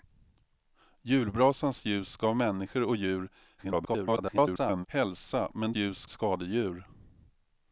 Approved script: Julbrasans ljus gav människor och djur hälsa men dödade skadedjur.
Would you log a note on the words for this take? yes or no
yes